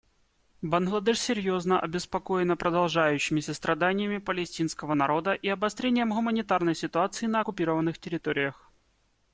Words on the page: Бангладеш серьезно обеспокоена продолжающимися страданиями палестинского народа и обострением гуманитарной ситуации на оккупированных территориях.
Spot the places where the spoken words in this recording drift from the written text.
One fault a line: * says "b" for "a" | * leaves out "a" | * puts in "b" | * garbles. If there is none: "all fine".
all fine